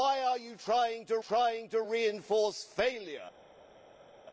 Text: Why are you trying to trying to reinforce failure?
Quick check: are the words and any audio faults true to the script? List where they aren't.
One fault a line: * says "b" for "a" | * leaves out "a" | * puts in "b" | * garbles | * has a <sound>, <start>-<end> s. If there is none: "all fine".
all fine